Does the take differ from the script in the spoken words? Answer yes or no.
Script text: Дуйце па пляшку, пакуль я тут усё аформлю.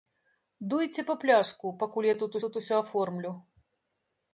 yes